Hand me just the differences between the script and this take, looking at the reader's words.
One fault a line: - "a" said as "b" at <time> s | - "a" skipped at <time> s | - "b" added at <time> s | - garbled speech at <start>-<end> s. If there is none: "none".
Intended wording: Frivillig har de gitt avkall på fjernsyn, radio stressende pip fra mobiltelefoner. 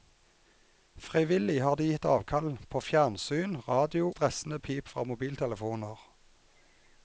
none